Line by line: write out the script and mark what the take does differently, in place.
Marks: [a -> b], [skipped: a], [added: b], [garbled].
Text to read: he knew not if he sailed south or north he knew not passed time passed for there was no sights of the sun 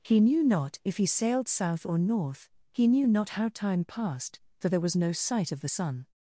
he knew not if he sailed south or north he knew not [passed -> how] time passed for there was no [sights -> sight] of the sun